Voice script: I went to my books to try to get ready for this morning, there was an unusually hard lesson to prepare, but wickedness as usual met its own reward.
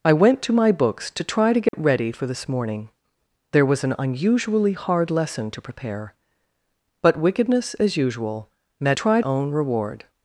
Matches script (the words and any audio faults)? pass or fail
fail